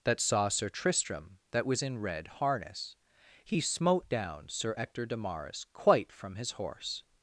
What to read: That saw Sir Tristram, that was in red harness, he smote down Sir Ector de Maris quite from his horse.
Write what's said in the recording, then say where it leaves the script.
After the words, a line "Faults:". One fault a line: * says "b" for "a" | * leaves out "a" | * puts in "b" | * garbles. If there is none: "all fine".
That saw Sir Tristram, that was in red harness, he smote down Sir Ector de Maris quite from his horse.
Faults:
all fine